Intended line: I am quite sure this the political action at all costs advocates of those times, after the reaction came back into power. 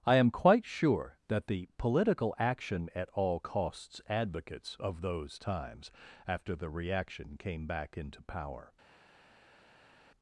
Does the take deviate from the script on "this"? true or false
true